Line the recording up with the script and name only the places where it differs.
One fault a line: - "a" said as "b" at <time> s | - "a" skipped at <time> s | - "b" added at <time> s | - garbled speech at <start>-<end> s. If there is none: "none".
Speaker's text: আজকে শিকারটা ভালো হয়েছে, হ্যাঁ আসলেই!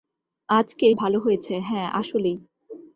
- "শিকারটা" skipped at 0.9 s